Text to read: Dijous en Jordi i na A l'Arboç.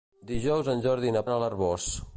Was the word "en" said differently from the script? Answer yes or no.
no